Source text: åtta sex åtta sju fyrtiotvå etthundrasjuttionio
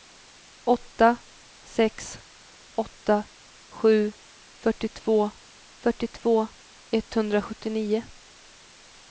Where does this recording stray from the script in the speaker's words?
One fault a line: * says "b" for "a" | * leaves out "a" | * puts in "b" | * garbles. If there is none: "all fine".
* puts in "fyrtiotvå"